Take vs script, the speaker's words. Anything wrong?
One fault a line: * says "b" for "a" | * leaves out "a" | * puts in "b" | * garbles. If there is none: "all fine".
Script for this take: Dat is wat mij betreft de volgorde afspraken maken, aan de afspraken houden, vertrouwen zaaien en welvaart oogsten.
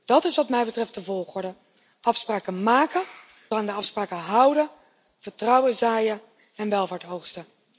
all fine